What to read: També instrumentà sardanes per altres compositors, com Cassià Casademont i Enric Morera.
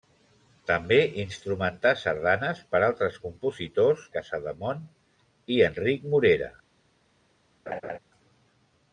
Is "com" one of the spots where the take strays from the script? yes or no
yes